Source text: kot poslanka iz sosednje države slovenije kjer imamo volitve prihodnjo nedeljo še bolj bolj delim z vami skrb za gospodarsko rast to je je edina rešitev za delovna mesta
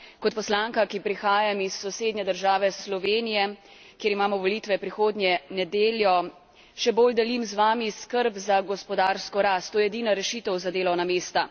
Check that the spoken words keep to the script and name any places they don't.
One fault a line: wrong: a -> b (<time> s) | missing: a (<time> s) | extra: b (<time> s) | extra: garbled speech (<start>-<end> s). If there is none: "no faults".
extra: ki prihajam (0.8 s)
missing: bolj (7.1 s)
missing: je (9.9 s)